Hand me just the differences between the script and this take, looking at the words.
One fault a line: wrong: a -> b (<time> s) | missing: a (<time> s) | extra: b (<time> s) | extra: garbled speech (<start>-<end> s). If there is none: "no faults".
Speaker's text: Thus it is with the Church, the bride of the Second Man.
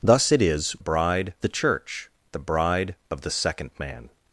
wrong: with -> bride (0.8 s)